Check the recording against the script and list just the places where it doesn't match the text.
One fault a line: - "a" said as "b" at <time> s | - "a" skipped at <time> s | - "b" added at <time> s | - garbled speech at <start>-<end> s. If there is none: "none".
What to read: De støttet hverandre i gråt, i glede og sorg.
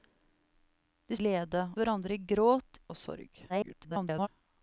- "støttet" said as "glede" at 1.2 s
- "i glede" skipped at 2.8 s
- garbled speech at 3.5-4.3 s